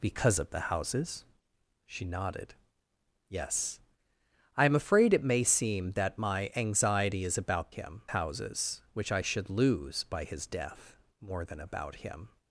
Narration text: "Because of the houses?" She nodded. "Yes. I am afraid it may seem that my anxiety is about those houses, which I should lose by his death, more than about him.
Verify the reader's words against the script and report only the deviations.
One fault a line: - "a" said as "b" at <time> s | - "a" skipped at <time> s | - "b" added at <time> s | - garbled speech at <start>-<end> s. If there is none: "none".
- "those" said as "him" at 7.7 s